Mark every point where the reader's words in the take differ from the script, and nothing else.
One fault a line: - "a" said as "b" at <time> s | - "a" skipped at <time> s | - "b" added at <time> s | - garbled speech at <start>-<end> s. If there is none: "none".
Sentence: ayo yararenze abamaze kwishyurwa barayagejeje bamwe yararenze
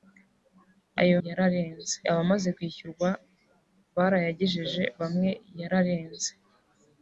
none